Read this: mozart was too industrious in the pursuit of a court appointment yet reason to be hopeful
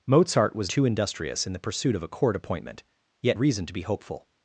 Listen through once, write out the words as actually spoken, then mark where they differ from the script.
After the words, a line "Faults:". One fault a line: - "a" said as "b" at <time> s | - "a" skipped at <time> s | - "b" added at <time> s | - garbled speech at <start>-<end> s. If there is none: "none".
mozart was too industrious in the pursuit of a court appointment yet reason to be hopeful
Faults:
none